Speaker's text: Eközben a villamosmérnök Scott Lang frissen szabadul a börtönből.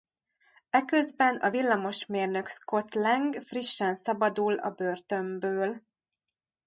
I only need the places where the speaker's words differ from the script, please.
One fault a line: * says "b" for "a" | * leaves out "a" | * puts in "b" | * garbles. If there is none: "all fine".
all fine